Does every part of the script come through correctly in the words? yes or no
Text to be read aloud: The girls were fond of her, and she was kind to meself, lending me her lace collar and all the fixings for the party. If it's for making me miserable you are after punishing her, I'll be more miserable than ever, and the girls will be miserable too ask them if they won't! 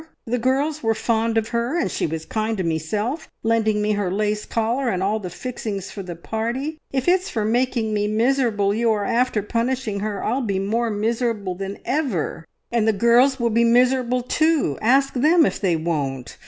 yes